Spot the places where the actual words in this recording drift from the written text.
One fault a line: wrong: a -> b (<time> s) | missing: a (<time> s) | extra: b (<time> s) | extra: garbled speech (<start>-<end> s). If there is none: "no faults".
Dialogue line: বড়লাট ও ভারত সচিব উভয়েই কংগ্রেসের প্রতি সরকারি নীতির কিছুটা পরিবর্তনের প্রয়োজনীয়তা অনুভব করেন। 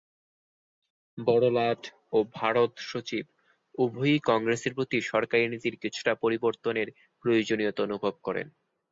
no faults